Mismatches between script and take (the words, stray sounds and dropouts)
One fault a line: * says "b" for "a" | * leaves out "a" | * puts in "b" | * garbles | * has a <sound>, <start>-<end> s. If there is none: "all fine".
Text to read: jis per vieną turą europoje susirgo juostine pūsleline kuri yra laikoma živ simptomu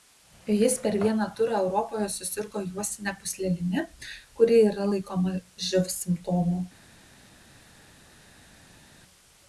all fine